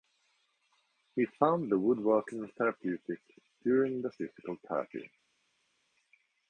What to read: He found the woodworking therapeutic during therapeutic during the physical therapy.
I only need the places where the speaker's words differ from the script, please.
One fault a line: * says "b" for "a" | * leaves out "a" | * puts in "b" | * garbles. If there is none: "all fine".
* leaves out "therapeutic during"